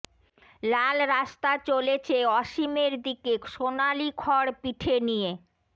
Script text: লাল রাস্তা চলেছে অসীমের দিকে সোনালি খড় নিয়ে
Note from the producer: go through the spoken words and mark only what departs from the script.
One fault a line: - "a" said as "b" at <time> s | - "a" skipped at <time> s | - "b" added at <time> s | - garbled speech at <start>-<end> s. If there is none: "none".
- "পিঠে" added at 4.6 s